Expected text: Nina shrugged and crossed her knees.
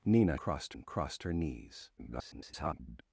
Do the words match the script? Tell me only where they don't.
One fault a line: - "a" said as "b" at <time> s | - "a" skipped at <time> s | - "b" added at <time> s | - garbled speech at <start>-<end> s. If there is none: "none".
- "shrugged" said as "crossed" at 0.4 s
- garbled speech at 2.0-3.0 s